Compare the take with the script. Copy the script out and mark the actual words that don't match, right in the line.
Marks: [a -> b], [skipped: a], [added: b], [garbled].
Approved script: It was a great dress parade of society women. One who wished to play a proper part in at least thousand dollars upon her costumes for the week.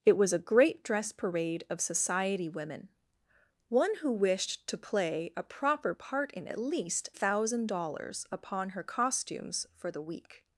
It was a great dress parade of society women. One who wished to play a proper part in at least thousand dollars upon her costumes for the week.